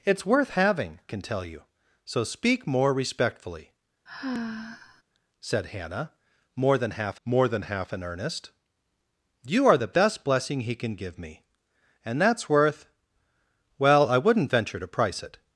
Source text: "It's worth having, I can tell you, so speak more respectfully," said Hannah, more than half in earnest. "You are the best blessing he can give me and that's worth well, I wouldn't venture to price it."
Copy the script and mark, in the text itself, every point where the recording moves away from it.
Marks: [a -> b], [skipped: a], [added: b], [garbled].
"It's worth having, [skipped: I] can tell you, so speak more respectfully," said Hannah, more than half [added: more than half] in earnest. "You are the best blessing he can give me and that's worth well, I wouldn't venture to price it."